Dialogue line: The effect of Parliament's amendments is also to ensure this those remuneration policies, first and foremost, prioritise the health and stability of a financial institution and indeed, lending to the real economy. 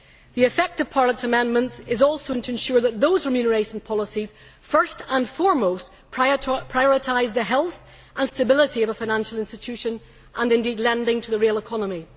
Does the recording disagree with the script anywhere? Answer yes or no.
yes